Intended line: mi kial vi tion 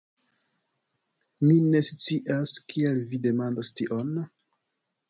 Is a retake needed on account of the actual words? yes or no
yes